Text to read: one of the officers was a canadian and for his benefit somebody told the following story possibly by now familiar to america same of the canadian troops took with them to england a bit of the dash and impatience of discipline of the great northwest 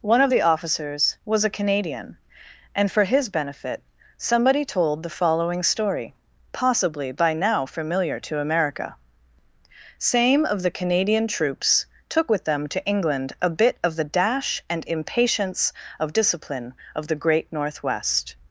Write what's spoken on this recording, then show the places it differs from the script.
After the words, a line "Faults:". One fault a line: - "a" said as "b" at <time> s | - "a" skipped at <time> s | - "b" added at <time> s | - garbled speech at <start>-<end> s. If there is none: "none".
one of the officers was a canadian and for his benefit somebody told the following story possibly by now familiar to america same of the canadian troops took with them to england a bit of the dash and impatience of discipline of the great northwest
Faults:
none